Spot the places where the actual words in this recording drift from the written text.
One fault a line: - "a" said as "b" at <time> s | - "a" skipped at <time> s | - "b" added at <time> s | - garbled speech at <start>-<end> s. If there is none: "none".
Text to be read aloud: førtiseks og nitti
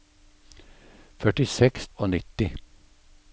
none